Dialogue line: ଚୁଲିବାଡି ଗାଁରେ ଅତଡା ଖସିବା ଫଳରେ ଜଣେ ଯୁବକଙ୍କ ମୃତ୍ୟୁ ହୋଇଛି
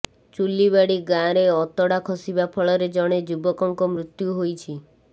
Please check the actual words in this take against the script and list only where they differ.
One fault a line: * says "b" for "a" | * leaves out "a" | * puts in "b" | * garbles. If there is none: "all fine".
all fine